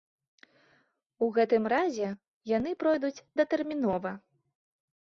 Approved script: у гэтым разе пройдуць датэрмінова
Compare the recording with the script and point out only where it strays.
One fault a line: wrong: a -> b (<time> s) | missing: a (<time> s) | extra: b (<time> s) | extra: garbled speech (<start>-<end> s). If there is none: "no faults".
extra: яны (2.6 s)